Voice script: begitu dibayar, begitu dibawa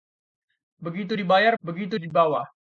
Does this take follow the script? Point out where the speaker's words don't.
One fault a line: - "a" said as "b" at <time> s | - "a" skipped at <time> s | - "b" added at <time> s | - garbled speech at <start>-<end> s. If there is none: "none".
none